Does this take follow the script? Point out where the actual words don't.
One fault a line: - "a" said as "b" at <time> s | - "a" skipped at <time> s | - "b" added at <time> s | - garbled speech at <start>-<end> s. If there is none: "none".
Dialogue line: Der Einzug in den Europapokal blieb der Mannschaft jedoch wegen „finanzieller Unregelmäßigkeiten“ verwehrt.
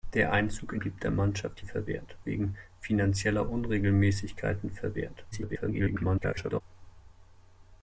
- "den Europapokal" skipped at 0.8 s
- "jedoch" said as "verwehrt" at 1.6 s
- garbled speech at 5.3-6.6 s